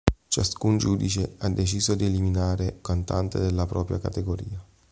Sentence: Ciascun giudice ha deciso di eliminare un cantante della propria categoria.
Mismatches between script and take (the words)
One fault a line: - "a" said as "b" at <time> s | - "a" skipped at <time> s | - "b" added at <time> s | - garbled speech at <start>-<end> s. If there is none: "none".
- "un" skipped at 2.8 s